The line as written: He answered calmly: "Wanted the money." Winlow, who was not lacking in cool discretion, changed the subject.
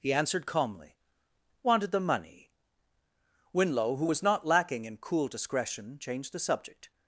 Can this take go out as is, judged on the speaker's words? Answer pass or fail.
pass